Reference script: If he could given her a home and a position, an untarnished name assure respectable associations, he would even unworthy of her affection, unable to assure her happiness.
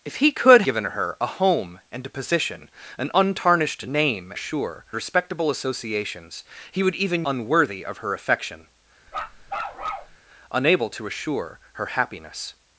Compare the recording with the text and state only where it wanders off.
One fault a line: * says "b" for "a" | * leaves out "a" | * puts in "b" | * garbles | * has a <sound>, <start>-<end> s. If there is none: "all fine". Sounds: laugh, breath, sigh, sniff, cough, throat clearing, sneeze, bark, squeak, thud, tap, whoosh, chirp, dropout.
* has a bark, 9.1-10.2 s